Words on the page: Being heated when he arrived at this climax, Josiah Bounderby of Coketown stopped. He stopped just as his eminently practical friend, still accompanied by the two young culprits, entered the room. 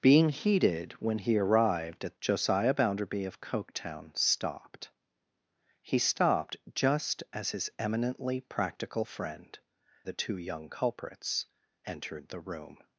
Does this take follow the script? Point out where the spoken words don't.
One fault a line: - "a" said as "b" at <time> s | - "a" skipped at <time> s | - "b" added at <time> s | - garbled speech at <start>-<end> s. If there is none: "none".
- "this climax" skipped at 2.2 s
- "still accompanied by" skipped at 9.6 s